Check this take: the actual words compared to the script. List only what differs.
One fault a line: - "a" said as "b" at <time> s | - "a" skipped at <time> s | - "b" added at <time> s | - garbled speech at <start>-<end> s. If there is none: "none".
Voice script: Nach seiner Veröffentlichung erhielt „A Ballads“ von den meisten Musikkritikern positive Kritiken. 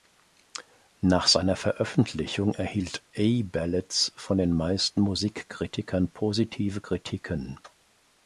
none